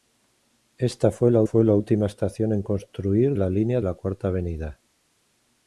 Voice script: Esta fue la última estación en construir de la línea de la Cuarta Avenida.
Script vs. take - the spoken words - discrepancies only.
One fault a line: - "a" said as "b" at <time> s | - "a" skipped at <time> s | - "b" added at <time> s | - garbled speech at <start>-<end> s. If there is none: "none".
- "fue la" added at 1.4 s
- "de" skipped at 3.4 s
- "de" skipped at 3.8 s